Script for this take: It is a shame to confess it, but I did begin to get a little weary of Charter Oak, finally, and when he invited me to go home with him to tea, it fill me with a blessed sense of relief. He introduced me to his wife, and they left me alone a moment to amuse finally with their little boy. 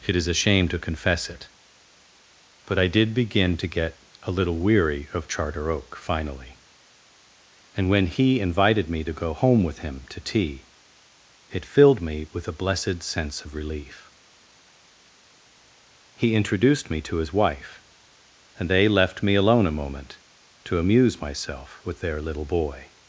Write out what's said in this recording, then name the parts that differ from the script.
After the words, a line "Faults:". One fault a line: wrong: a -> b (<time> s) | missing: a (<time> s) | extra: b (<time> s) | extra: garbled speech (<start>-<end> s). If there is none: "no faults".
It is a shame to confess it, but I did begin to get a little weary of Charter Oak, finally, and when he invited me to go home with him to tea, it filled me with a blessed sense of relief. He introduced me to his wife, and they left me alone a moment to amuse myself with their little boy.
Faults:
wrong: fill -> filled (11.7 s)
wrong: finally -> myself (21.2 s)